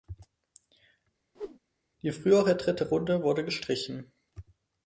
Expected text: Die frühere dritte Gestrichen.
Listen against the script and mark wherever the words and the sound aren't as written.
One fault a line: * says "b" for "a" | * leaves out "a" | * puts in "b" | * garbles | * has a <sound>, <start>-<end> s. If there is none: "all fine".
* has a whoosh, 1.3-1.6 s
* puts in "Runde wurde"